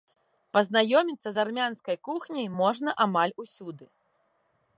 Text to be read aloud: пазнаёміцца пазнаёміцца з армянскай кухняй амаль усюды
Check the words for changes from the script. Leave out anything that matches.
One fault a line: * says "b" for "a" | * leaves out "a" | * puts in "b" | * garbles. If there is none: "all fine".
* leaves out "пазнаёміцца"
* puts in "можна"